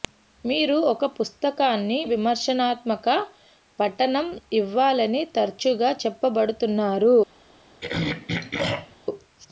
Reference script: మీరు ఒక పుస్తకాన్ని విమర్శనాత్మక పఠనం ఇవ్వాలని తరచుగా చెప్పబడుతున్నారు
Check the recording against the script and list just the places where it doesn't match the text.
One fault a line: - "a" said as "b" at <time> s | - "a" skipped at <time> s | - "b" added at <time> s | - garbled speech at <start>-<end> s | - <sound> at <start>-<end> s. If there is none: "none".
- throat clearing at 7.8-9.0 s